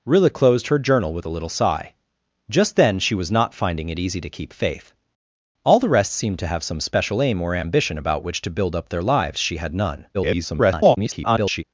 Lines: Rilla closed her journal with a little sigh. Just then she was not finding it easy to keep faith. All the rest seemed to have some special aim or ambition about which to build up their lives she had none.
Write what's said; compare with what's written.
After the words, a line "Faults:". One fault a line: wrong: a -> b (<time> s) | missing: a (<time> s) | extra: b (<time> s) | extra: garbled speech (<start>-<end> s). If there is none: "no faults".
Rilla closed her journal with a little sigh. Just then she was not finding it easy to keep faith. All the rest seemed to have some special aim or ambition about which to build up their lives she had none. [garbled]
Faults:
extra: garbled speech (10.1-11.6 s)